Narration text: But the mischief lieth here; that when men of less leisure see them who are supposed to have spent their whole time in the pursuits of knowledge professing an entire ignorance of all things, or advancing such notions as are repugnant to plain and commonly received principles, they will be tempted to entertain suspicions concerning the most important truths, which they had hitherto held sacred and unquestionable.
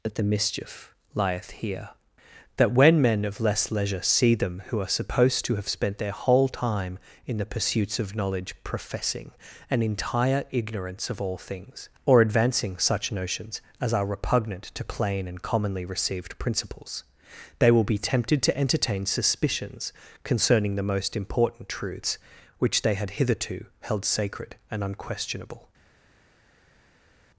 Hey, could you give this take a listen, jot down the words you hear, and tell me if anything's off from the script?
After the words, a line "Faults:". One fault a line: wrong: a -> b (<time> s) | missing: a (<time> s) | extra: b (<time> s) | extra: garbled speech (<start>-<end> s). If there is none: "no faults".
That the mischief lieth here; that when men of less leisure see them who are supposed to have spent their whole time in the pursuits of knowledge professing an entire ignorance of all things, or advancing such notions as are repugnant to plain and commonly received principles, they will be tempted to entertain suspicions concerning the most important truths, which they had hitherto held sacred and unquestionable.
Faults:
wrong: But -> That (0.0 s)